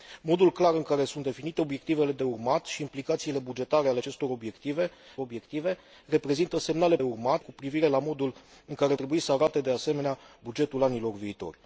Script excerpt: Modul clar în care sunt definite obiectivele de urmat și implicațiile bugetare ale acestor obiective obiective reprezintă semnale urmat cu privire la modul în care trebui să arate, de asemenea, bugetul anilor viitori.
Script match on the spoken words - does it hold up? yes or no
yes